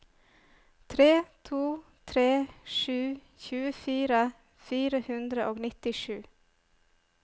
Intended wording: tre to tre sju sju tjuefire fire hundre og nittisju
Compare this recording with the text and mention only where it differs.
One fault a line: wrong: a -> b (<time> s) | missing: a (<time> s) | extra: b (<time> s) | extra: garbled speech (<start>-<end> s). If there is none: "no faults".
missing: sju (3.0 s)